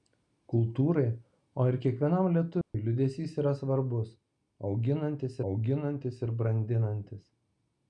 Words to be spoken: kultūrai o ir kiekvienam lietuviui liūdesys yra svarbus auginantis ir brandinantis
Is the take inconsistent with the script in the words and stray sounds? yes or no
yes